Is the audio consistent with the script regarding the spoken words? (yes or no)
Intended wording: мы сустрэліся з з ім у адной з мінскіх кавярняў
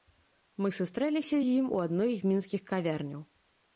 no